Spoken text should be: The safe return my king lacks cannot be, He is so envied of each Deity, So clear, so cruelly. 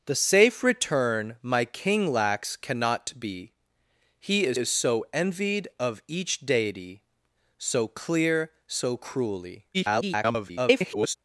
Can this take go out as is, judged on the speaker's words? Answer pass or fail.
fail